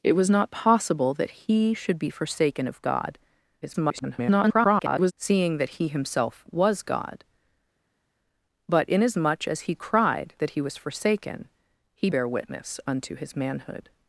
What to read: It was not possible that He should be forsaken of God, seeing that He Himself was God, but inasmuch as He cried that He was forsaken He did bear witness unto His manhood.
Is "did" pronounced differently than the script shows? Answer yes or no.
yes